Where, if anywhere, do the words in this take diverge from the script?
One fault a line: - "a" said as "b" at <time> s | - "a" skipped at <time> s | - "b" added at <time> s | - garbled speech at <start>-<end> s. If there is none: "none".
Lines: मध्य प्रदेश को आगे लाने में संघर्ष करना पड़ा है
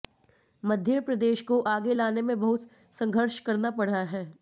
- "बहुत" added at 2.4 s